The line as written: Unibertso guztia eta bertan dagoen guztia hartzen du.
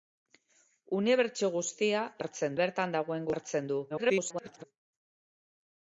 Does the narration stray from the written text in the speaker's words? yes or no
yes